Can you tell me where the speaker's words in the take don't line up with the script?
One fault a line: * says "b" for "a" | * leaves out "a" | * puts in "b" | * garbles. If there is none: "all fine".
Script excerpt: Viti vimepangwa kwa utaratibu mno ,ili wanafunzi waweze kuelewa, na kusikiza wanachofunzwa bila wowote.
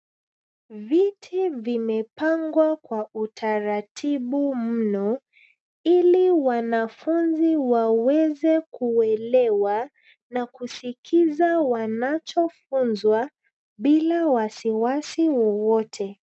* puts in "wasiwasi"